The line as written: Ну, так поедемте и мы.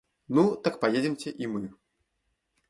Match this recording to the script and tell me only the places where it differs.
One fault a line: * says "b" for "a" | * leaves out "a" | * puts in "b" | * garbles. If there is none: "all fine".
all fine